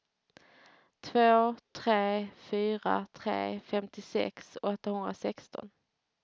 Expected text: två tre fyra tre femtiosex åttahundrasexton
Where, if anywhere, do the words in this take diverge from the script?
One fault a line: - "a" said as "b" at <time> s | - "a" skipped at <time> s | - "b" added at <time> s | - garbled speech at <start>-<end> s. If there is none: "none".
none